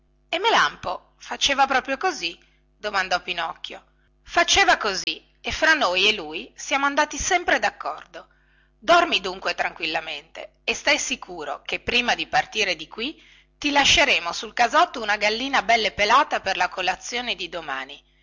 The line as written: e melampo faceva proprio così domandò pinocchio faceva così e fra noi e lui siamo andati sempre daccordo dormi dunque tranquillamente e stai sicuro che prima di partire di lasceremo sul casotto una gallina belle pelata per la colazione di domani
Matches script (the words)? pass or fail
fail